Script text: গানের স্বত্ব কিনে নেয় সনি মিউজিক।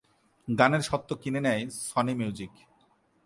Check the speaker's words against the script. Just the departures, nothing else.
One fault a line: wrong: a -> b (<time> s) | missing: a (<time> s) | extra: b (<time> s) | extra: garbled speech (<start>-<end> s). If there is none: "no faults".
no faults